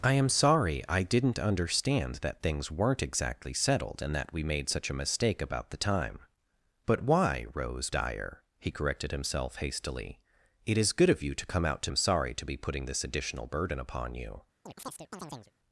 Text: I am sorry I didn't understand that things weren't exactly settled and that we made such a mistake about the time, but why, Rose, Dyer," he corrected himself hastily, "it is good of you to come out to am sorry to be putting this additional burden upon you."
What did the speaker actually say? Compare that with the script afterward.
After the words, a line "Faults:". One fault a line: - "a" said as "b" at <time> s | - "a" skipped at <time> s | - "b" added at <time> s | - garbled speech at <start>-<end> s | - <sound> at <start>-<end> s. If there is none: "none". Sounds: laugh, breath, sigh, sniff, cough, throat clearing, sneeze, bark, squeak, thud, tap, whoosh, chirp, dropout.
I am sorry I didn't understand that things weren't exactly settled and that we made such a mistake about the time, but why, Rose, Dyer," he corrected himself hastily, "it is good of you to come out to am sorry to be putting this additional burden upon you."
Faults:
- chirp at 14.7-15.5 s